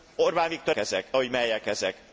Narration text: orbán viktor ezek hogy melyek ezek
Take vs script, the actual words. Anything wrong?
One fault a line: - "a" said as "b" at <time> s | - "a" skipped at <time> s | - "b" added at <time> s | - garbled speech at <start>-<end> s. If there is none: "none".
none